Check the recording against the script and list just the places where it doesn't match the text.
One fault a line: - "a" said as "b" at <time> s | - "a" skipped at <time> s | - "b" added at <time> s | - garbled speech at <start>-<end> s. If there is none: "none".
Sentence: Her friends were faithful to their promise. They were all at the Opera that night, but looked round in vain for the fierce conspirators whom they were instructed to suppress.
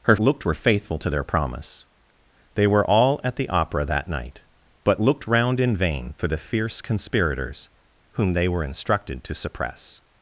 - "friends" said as "looked" at 0.2 s